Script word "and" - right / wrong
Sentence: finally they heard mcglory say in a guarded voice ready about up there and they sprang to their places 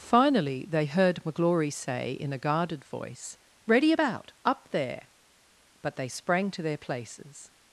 wrong